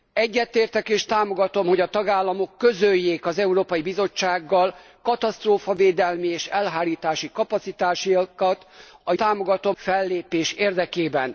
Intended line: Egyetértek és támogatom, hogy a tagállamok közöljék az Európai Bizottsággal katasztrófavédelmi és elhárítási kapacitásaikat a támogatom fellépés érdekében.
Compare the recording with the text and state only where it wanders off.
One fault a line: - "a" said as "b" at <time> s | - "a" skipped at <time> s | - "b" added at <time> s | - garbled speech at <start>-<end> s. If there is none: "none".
none